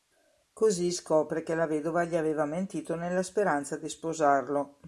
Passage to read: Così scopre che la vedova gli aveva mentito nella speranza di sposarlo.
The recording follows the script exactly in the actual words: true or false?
true